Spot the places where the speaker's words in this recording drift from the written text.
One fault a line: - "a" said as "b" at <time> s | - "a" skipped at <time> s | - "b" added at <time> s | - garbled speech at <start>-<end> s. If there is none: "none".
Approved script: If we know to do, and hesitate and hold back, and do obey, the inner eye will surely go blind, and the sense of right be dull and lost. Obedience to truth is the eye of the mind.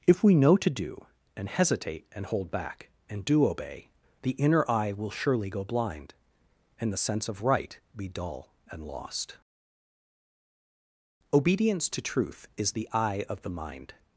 none